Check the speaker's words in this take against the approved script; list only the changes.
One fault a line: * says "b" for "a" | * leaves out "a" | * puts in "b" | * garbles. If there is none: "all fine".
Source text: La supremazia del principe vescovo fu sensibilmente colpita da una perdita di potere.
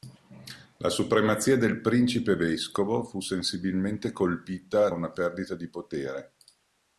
* leaves out "da"